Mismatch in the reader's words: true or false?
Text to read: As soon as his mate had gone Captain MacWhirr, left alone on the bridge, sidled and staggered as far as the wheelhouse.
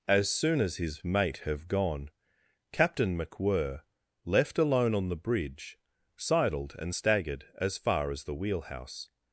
true